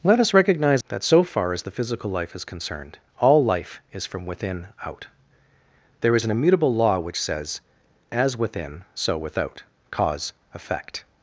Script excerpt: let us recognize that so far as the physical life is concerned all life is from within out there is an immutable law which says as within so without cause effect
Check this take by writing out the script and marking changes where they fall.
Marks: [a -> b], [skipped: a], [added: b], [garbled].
let us recognize that so far as the physical life is concerned all life is from within out there is an immutable law which says as within so without cause effect